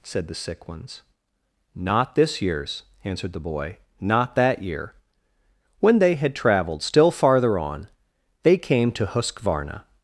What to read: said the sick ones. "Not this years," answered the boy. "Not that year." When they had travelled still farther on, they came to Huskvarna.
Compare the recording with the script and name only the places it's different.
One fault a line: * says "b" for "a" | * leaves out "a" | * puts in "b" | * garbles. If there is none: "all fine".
all fine